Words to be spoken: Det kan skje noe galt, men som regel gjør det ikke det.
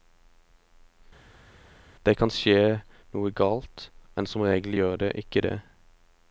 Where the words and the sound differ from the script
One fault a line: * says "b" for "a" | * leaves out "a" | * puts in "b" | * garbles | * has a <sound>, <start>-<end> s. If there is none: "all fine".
all fine